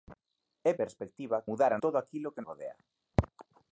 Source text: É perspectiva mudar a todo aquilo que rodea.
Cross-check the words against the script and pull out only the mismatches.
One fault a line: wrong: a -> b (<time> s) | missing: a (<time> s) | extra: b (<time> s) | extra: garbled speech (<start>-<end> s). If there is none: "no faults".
no faults